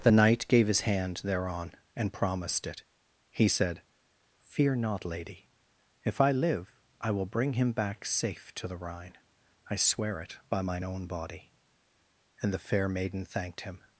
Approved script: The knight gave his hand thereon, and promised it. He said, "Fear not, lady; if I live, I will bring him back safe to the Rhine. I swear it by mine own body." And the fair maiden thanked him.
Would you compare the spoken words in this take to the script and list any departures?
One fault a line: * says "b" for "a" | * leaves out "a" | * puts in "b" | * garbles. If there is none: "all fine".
all fine